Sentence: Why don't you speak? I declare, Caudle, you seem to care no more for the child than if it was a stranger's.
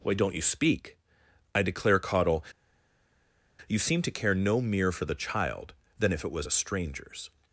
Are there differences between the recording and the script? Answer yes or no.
yes